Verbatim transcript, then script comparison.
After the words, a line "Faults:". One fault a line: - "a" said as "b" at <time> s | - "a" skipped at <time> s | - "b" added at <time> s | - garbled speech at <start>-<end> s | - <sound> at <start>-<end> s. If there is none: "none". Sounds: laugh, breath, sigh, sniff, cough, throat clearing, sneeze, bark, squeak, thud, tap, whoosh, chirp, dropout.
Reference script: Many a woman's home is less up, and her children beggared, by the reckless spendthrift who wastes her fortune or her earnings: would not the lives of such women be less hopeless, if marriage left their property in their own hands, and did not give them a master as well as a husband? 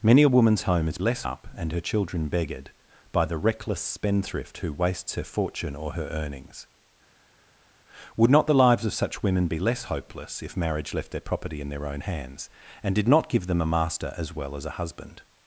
Many a woman's home is less up, and her children beggared, by the reckless spendthrift who wastes her fortune or her earnings: would not the lives of such women be less hopeless, if marriage left their property in their own hands, and did not give them a master as well as a husband?
Faults:
none